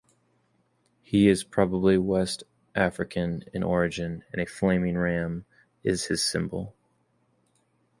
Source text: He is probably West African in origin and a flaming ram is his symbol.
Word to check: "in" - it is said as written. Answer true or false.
true